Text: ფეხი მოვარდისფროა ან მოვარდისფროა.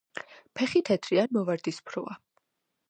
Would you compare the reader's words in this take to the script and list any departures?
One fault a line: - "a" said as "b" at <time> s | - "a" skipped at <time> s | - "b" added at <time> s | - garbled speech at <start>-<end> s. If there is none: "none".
- "მოვარდისფროა" said as "თეთრი" at 0.9 s